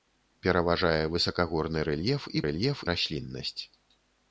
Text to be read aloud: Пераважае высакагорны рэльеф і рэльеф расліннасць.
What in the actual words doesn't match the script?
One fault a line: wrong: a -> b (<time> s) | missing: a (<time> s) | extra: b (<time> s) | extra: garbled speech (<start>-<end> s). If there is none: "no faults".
no faults